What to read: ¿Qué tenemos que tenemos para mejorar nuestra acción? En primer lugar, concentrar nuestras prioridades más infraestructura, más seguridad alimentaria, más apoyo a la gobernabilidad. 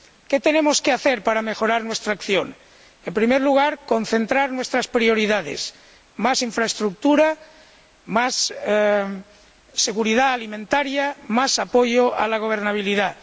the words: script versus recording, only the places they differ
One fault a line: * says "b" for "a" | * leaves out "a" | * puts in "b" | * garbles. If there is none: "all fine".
* says "hacer" for "tenemos"